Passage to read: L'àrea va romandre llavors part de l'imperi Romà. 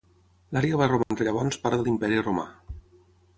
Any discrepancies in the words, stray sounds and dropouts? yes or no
yes